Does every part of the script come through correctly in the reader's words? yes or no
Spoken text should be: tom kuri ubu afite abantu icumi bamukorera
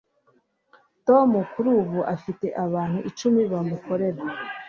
yes